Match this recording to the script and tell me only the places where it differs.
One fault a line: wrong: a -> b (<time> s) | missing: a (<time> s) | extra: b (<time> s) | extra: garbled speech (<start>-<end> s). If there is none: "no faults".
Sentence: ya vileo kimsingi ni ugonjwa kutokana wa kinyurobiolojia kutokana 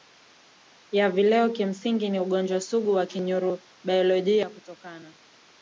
wrong: kutokana -> sugu (2.6 s)